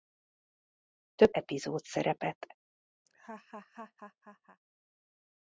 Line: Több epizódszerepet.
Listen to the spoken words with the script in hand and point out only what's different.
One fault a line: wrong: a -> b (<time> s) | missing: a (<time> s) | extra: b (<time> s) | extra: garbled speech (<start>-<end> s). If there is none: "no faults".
no faults